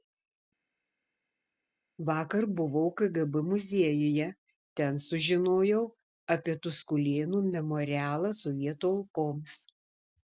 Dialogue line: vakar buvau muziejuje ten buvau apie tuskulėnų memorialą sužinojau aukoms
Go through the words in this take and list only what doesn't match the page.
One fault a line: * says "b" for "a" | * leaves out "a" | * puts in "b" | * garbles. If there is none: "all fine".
* puts in "kgb"
* says "sužinojau" for "buvau"
* says "sovietų" for "sužinojau"